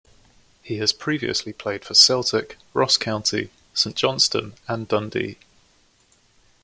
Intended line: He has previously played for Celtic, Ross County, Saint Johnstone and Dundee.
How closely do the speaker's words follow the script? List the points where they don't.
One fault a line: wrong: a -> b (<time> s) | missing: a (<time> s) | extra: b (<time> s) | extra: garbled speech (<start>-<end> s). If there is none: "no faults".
no faults